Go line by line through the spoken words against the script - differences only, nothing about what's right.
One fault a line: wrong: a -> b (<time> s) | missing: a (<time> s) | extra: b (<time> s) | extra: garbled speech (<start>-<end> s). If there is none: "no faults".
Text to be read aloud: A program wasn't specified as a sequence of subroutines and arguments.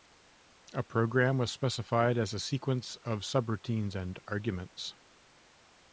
wrong: wasn't -> was (1.4 s)